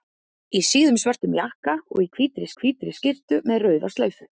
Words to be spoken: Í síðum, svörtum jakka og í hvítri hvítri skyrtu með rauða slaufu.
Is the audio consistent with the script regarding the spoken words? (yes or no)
yes